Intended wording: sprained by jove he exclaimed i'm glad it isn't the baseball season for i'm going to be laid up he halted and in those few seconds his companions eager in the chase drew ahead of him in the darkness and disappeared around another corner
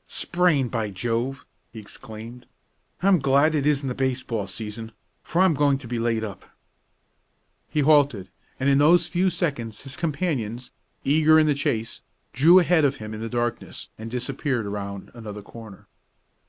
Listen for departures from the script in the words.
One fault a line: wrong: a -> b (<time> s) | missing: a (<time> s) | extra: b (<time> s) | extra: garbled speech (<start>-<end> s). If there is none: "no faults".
no faults